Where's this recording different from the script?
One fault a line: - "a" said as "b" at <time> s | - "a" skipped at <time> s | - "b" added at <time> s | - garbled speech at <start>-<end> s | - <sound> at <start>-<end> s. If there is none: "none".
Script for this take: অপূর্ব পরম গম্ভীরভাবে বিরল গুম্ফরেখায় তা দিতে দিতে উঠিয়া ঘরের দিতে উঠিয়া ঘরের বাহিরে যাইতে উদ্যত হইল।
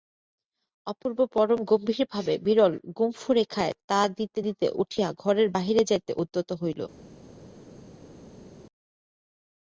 - "দিতে উঠিয়া ঘরের" skipped at 5.5 s